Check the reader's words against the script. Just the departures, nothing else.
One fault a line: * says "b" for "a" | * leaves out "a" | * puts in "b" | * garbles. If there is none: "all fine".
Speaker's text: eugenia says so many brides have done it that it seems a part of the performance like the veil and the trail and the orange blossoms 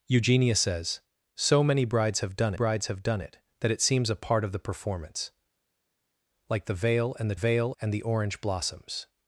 * puts in "brides have done"
* says "veil" for "trail"